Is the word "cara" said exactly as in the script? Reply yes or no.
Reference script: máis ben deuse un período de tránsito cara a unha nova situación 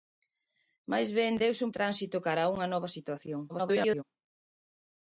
yes